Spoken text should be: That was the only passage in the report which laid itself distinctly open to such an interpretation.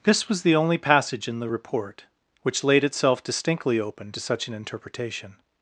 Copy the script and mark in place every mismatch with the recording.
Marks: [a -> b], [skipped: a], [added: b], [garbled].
[That -> This] was the only passage in the report which laid itself distinctly open to such an interpretation.